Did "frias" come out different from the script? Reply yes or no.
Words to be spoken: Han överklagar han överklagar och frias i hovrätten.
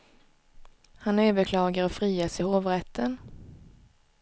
no